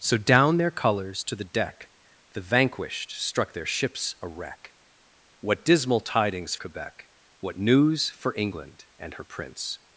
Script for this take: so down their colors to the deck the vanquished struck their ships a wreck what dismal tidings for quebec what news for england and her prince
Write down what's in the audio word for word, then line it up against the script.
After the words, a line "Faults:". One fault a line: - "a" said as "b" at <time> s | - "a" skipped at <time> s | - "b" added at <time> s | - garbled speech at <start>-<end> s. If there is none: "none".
so down their colors to the deck the vanquished struck their ships a wreck what dismal tidings quebec what news for england and her prince
Faults:
- "for" skipped at 6.5 s